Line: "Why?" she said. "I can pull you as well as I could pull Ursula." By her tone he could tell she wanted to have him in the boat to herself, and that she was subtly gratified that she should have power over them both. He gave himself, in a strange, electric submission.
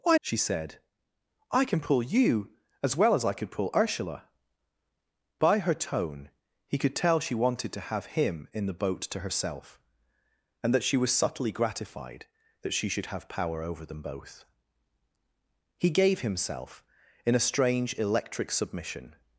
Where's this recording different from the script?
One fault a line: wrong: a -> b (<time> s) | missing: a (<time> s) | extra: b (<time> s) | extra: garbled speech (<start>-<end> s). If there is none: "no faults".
no faults